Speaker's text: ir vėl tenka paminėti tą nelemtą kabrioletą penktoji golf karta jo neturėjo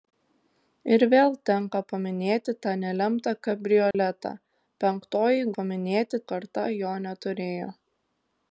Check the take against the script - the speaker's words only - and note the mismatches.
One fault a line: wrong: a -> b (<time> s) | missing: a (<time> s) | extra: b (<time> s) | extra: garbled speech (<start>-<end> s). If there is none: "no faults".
wrong: golf -> paminėti (5.6 s)